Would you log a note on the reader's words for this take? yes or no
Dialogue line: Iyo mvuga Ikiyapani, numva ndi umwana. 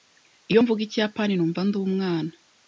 no